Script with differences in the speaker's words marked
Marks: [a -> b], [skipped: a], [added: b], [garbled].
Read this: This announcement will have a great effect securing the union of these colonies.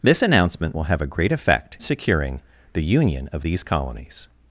This announcement will have a great effect securing the union of these colonies.